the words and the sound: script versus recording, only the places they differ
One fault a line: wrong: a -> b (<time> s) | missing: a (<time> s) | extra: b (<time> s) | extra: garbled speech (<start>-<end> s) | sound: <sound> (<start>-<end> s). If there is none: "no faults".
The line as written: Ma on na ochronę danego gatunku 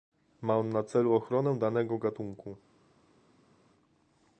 extra: celu (0.8 s)